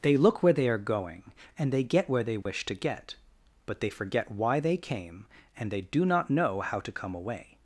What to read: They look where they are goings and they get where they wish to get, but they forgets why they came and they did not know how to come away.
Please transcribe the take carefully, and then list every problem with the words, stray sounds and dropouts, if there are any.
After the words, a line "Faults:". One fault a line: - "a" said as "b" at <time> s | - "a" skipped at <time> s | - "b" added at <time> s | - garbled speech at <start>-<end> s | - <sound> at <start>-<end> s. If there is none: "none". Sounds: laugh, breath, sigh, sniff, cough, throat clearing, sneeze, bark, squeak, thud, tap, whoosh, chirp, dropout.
They look where they are going and they get where they wish to get, but they forget why they came and they do not know how to come away.
Faults:
- "goings" said as "going" at 0.8 s
- dropout at 2.4-2.5 s
- "forgets" said as "forget" at 3.9 s
- "did" said as "do" at 5.8 s